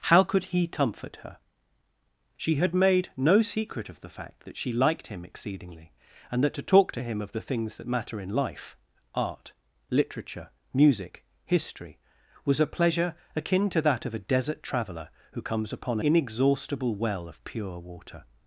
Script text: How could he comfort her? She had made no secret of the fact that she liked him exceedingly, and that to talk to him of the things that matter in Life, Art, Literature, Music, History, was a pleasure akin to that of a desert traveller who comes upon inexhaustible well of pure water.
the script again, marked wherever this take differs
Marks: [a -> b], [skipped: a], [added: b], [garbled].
How could he comfort her? She had made no secret of the fact that she liked him exceedingly, and that to talk to him of the things that matter in Life, Art, Literature, Music, History, was a pleasure akin to that of a desert traveller who comes upon inexhaustible well of pure water.